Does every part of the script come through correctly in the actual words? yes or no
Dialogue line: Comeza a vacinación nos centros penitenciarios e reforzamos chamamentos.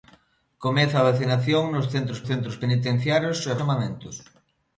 no